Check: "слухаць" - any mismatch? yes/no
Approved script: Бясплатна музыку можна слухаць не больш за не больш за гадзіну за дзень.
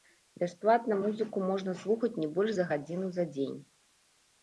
no